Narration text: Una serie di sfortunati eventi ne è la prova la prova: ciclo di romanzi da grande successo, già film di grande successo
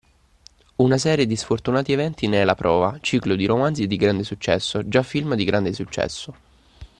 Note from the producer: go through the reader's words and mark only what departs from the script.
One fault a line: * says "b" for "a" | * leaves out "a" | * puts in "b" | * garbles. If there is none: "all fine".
* leaves out "la prova"
* says "di" for "da"